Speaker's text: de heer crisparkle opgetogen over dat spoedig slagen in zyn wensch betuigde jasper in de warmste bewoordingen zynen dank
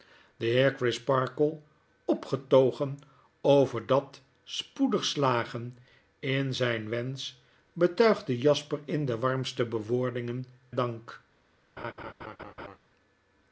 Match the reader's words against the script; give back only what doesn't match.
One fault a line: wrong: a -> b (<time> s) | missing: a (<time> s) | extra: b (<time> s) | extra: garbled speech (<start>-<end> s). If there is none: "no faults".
missing: zynen (10.4 s)